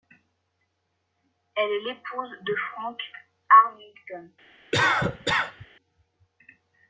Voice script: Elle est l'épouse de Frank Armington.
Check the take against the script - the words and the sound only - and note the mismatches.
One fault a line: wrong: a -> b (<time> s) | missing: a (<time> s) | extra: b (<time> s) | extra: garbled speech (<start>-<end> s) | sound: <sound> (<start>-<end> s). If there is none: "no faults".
sound: cough (4.7-5.7 s)